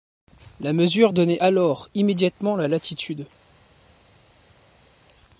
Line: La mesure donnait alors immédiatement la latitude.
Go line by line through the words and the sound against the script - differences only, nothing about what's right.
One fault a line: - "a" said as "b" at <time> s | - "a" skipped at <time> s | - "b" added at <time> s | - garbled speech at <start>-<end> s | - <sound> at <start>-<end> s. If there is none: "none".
none